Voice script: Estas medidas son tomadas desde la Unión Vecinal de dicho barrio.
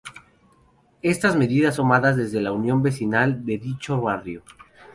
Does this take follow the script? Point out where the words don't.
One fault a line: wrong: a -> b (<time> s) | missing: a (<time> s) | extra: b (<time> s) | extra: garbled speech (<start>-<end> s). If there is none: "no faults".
missing: son (1.8 s)